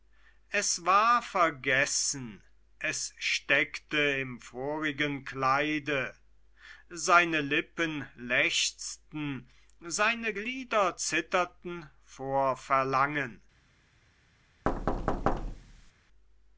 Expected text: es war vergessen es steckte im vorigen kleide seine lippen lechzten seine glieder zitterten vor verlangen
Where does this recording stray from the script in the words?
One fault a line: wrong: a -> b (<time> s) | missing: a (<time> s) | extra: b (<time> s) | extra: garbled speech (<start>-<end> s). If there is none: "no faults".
no faults